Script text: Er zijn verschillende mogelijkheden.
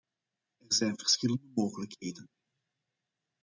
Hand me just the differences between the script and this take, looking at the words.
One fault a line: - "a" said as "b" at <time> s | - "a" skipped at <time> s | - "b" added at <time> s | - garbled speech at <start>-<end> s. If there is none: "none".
none